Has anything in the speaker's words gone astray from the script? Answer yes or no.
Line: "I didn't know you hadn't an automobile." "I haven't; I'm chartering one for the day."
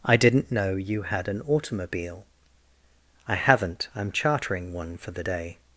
yes